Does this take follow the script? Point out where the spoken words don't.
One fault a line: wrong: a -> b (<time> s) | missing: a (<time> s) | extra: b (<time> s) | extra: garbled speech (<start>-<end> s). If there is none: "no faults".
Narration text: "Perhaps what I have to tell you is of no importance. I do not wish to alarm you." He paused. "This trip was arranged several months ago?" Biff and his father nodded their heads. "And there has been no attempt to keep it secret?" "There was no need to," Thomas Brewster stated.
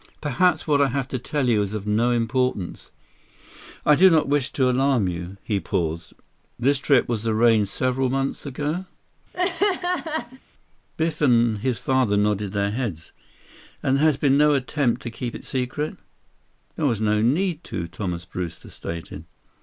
no faults